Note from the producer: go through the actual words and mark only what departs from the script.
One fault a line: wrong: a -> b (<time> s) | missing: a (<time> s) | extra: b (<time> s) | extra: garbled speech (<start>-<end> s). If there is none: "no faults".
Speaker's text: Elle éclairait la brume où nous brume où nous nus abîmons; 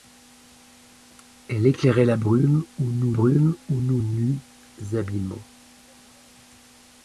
no faults